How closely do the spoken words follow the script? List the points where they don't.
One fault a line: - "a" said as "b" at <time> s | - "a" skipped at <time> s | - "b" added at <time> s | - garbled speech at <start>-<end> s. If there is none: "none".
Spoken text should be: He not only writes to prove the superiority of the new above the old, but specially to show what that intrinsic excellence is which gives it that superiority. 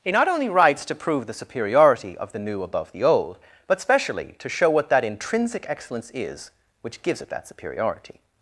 none